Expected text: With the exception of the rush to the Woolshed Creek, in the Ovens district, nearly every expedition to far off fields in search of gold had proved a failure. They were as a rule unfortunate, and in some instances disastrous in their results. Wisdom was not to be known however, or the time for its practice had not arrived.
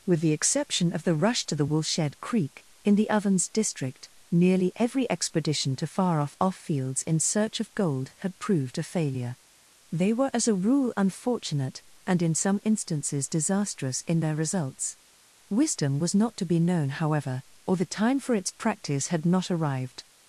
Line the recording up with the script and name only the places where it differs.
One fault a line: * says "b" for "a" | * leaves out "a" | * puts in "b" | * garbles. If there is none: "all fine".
* puts in "off"